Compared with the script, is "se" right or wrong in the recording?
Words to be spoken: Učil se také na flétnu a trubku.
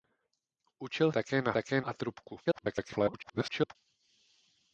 wrong